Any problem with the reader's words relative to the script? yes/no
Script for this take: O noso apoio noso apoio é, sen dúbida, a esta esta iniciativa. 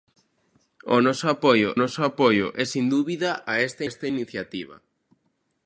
no